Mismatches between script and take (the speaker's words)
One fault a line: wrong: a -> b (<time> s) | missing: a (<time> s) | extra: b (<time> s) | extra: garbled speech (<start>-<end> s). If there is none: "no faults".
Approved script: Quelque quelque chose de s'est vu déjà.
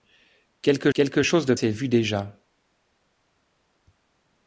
no faults